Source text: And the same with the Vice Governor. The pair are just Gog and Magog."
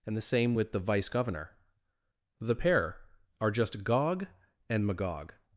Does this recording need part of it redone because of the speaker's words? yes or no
no